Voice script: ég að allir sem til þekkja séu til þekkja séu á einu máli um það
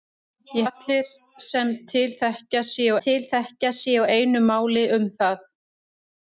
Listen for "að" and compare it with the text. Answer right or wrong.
right